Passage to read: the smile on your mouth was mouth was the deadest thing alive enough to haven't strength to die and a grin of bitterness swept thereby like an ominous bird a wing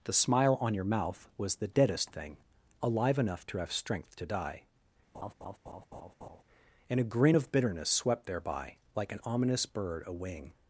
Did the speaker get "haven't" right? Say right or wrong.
wrong